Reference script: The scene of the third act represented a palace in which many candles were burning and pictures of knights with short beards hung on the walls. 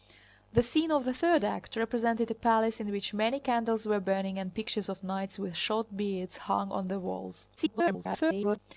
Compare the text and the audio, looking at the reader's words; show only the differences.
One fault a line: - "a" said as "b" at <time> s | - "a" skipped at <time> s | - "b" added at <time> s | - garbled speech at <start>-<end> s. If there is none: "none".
- garbled speech at 7.6-8.6 s